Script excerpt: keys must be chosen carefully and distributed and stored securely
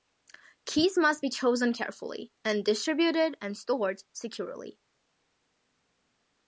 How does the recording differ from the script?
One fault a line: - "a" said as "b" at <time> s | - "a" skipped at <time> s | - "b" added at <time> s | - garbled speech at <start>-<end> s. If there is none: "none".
none